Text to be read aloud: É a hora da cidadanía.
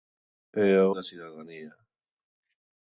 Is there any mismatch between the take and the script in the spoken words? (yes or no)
yes